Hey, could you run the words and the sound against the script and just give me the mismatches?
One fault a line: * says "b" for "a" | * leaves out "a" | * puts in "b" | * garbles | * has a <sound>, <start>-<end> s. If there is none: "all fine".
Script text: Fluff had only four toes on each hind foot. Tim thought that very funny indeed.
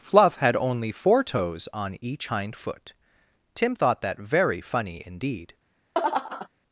* has a laugh, 5.9-6.5 s